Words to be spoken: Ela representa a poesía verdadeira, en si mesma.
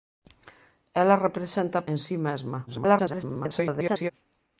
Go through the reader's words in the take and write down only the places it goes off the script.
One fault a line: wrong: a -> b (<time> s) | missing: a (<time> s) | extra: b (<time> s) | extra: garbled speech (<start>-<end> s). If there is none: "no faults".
missing: poesía verdadeira (1.9 s)
extra: garbled speech (2.7-4.1 s)